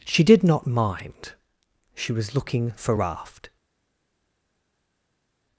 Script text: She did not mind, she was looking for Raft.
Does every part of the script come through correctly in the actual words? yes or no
yes